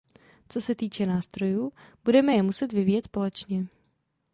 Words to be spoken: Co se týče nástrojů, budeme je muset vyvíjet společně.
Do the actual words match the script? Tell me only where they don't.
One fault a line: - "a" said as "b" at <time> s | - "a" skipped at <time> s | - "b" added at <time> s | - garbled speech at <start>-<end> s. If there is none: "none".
none